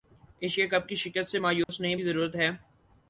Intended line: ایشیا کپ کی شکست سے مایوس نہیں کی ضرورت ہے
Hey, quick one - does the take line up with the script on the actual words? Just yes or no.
yes